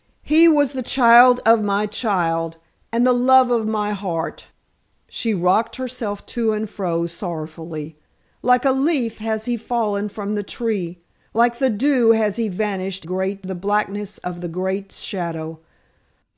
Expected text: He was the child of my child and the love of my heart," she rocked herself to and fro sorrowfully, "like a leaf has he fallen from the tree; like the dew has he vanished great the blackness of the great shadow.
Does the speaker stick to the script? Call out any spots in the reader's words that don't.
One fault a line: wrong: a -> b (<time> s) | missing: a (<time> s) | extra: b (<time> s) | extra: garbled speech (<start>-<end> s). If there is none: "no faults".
no faults